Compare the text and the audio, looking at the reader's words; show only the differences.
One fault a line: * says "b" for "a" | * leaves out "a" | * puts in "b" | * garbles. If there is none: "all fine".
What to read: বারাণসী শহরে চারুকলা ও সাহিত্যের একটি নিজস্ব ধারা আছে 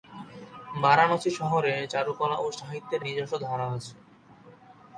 * leaves out "একটি"